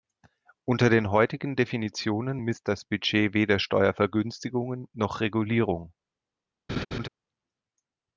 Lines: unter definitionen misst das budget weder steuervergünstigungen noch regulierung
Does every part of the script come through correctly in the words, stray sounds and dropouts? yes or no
no